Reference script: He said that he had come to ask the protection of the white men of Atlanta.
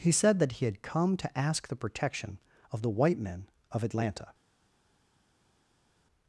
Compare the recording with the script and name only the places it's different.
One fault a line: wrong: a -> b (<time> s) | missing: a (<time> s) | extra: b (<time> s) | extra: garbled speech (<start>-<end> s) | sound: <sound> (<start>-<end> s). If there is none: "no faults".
no faults